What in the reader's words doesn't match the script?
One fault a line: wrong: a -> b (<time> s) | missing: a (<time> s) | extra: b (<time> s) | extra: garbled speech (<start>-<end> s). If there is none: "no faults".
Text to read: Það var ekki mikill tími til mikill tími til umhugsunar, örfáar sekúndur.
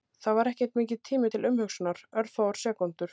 missing: mikill tími til (1.5 s)